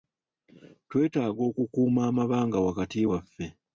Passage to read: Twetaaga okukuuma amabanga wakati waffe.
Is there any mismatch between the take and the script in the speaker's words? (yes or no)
no